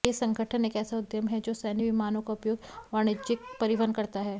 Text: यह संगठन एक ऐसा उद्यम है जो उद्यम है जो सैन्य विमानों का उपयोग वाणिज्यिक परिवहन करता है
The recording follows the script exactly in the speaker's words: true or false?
false